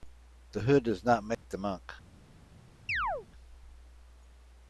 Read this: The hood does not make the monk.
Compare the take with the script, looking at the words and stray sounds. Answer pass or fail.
fail